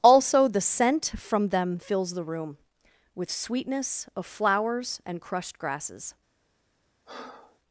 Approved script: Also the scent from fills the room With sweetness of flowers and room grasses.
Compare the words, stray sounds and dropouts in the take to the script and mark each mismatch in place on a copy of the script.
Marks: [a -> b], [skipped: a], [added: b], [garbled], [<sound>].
Also the scent from [added: them] fills the room With sweetness of flowers and [room -> crushed] grasses. [breath]